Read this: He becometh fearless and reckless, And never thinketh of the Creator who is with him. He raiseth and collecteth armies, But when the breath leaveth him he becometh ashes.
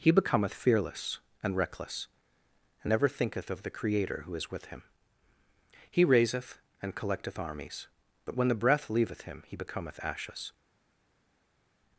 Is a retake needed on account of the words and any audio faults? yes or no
no